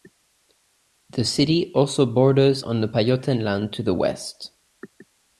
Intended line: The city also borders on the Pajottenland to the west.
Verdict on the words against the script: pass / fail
pass